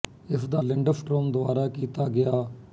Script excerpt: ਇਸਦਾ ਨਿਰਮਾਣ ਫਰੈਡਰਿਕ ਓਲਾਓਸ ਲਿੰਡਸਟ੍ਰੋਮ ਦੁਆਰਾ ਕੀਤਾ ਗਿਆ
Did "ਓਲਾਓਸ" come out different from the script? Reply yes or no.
yes